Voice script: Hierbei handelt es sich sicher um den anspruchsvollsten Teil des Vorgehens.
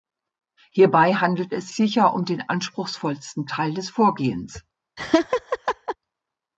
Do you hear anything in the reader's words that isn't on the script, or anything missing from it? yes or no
yes